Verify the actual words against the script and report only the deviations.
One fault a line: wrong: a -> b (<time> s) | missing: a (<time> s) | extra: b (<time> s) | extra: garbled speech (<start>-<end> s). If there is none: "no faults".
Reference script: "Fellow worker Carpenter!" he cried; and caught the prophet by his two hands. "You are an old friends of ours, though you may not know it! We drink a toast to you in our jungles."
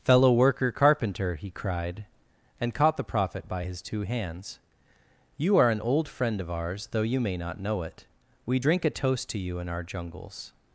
wrong: friends -> friend (6.1 s)